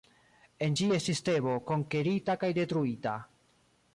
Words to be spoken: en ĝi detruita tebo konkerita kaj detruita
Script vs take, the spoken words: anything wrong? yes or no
yes